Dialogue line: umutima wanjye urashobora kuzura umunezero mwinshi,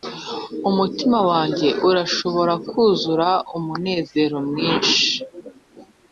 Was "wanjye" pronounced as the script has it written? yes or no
yes